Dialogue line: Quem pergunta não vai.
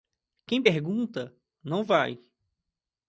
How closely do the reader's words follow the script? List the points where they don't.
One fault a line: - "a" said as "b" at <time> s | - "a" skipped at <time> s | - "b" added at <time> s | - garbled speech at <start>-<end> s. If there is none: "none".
none